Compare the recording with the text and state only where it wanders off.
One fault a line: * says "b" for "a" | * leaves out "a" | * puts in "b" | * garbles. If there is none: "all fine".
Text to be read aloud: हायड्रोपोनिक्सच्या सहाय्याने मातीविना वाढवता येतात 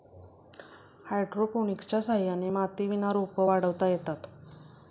* puts in "रोपं"